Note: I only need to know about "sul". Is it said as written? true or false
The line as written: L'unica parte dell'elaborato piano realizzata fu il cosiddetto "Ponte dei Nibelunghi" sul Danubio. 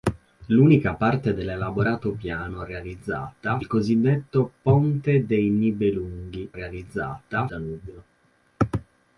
false